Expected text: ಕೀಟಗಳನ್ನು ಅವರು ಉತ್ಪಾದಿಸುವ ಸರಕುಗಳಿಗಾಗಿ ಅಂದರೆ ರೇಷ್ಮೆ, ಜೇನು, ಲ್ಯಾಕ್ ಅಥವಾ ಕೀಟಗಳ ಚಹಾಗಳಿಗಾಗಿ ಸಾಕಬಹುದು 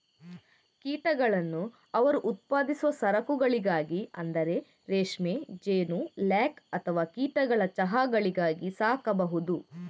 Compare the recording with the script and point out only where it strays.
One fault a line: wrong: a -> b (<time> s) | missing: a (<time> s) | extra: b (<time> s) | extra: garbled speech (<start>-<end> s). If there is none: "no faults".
no faults